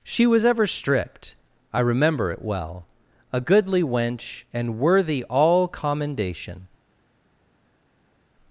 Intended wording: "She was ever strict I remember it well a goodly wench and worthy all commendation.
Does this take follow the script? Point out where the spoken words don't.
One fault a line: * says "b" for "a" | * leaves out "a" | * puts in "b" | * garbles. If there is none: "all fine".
* says "stripped" for "strict"